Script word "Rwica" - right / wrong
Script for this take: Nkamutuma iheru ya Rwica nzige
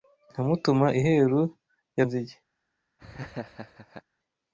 wrong